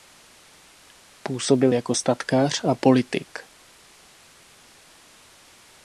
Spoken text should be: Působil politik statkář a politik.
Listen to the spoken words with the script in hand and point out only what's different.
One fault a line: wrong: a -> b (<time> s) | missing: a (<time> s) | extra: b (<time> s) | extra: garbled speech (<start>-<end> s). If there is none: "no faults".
wrong: politik -> jako (1.7 s)